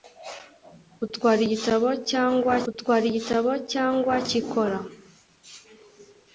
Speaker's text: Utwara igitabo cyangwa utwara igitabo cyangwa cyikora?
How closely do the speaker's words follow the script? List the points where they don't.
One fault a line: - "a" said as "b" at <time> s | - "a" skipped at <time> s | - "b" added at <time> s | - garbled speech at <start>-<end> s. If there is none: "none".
none